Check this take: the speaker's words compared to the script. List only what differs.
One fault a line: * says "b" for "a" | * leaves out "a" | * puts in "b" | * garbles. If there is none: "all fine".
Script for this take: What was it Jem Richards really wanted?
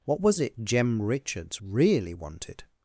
all fine